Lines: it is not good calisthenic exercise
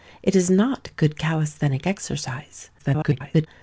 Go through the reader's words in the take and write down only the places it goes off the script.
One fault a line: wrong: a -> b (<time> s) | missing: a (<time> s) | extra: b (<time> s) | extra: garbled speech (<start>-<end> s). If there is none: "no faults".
extra: garbled speech (2.8-3.5 s)